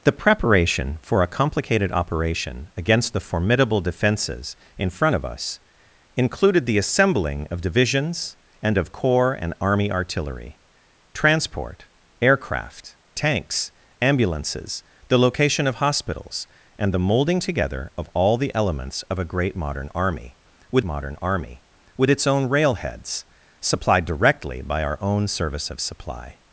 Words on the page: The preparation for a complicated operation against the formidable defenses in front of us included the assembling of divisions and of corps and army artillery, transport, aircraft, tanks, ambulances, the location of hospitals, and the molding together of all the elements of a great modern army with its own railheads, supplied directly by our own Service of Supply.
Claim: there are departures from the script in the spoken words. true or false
true